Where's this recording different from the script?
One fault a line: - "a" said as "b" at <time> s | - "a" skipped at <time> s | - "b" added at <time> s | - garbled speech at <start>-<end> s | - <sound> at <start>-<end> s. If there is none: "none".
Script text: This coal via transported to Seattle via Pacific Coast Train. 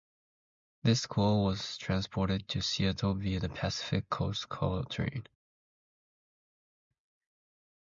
- "via" said as "was" at 1.4 s
- "the" added at 3.4 s
- "Coal" added at 4.5 s